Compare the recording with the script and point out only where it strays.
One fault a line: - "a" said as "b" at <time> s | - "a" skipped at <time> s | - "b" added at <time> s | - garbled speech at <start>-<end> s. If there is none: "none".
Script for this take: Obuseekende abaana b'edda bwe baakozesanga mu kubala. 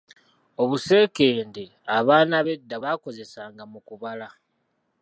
- "bwe" skipped at 2.8 s